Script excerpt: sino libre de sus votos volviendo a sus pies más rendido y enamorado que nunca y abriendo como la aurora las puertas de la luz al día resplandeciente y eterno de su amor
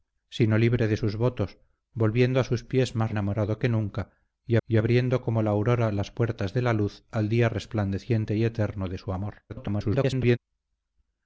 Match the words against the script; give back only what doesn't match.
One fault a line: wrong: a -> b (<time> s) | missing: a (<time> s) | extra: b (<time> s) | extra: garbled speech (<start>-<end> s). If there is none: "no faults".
missing: rendido y (3.1 s)
extra: y (4.6 s)
extra: garbled speech (9.5-10.4 s)